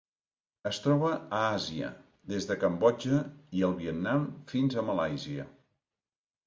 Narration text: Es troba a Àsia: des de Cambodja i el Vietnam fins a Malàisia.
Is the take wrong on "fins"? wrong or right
right